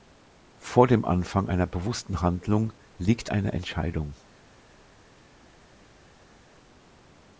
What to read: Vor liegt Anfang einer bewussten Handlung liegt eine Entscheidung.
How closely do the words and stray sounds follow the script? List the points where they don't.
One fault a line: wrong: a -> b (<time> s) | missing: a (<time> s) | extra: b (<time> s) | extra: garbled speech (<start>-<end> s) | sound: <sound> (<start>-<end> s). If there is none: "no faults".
wrong: liegt -> dem (0.9 s)